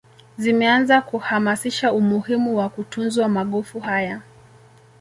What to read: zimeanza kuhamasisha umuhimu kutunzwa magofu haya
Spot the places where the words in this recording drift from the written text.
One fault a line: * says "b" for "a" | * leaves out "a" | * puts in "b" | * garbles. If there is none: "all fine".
* puts in "wa"